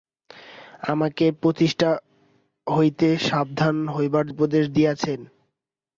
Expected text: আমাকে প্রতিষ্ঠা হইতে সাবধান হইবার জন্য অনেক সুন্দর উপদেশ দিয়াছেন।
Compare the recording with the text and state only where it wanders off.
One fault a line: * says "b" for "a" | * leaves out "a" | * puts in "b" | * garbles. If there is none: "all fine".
* leaves out "জন্য অনেক সুন্দর"